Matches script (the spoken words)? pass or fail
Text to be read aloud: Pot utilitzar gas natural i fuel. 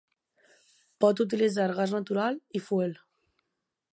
pass